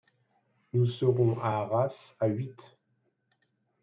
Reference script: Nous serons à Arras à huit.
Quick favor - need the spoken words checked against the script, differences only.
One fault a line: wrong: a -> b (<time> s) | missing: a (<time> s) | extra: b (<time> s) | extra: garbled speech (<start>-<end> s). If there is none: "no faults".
no faults